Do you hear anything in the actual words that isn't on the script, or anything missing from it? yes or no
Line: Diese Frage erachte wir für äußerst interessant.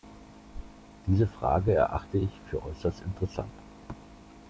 yes